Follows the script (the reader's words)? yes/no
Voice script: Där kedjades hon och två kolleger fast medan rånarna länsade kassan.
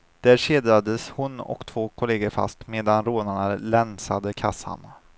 yes